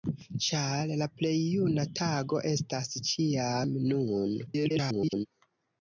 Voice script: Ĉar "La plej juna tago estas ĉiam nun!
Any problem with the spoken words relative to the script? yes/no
yes